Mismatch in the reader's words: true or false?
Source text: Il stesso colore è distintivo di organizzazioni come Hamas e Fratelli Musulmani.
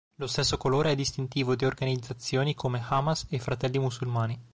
true